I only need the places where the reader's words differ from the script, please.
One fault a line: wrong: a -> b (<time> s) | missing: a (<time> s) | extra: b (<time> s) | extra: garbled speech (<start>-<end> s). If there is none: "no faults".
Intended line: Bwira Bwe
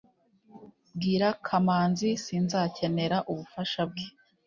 extra: Kamanzi sinzakenera ubufasha (1.4 s)